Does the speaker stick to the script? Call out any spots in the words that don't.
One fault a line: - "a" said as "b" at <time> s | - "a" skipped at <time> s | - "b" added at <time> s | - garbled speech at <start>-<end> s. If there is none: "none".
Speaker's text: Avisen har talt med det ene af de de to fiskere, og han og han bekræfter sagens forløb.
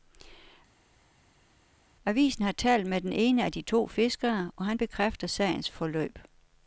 - "det" said as "den" at 3.0 s
- "de" skipped at 3.6 s
- "og han" skipped at 4.8 s